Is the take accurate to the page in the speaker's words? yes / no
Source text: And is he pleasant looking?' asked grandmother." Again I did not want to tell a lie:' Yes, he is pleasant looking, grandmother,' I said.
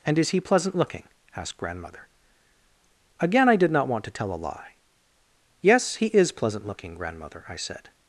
yes